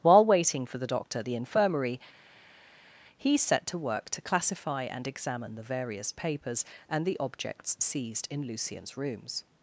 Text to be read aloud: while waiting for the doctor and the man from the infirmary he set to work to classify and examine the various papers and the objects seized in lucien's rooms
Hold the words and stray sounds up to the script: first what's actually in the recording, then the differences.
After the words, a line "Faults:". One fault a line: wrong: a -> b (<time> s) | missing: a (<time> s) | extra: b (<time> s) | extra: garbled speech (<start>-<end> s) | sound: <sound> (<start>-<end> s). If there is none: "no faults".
while waiting for the doctor the infirmary he set to work to classify and examine the various papers and the objects seized in lucien's rooms
Faults:
missing: and the man from (1.2 s)